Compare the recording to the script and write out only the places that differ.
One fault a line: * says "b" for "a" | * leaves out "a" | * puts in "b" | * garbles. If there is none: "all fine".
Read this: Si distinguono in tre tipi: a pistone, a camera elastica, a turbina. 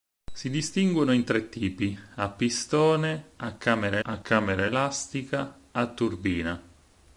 * puts in "a camera"